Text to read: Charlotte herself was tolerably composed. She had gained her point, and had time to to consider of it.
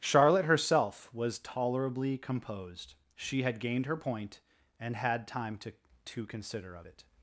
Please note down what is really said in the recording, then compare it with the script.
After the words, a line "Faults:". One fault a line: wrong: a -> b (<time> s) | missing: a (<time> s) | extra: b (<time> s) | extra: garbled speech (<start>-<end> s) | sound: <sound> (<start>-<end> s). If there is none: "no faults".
Charlotte herself was tolerably composed. She had gained her point, and had time to to consider of it.
Faults:
no faults